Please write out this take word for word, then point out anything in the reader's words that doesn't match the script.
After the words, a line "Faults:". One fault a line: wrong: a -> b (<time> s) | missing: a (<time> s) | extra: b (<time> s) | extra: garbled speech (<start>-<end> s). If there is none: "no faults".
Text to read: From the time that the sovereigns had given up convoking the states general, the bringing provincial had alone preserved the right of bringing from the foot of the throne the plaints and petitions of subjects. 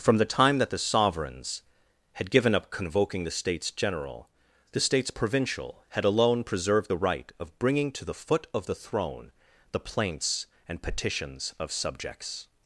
From the time that the sovereigns had given up convoking the states general, the states provincial had alone preserved the right of bringing to the foot of the throne the plaints and petitions of subjects.
Faults:
wrong: bringing -> states (4.8 s)
wrong: from -> to (7.9 s)